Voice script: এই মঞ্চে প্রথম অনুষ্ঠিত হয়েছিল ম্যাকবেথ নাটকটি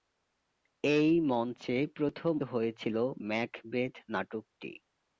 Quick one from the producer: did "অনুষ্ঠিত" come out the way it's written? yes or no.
no